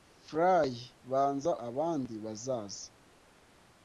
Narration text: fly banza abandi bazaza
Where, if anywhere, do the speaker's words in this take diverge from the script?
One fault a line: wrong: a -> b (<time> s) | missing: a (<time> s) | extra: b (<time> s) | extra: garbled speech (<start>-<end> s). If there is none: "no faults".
no faults